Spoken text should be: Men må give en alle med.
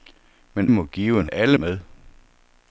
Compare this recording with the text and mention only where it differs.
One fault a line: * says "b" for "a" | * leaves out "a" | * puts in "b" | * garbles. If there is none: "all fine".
all fine